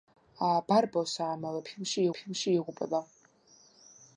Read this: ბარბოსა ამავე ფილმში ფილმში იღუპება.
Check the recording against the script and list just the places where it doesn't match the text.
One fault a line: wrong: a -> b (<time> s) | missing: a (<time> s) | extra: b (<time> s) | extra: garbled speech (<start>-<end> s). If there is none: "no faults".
no faults